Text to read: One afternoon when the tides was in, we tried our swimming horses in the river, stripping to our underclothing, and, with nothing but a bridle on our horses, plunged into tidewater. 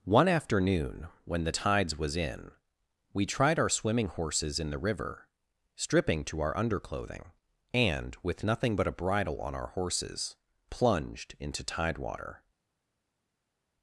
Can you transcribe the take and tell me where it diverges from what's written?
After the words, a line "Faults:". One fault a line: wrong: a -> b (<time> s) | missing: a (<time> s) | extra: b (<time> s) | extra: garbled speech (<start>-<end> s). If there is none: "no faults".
One afternoon when the tides was in, we tried our swimming horses in the river, stripping to our underclothing, and, with nothing but a bridle on our horses, plunged into tidewater.
Faults:
no faults